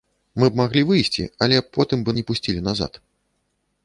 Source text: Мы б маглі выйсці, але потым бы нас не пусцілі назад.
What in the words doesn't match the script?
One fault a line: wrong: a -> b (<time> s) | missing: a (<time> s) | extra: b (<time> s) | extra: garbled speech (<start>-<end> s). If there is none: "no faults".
missing: нас (2.2 s)